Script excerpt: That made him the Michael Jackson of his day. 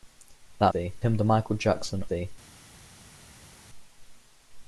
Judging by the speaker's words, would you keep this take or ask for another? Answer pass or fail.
fail